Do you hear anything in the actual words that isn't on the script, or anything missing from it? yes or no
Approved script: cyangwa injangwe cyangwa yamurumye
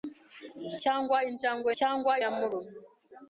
no